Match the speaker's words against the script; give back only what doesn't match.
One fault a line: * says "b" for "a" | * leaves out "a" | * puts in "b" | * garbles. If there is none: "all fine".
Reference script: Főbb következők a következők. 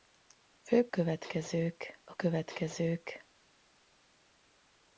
all fine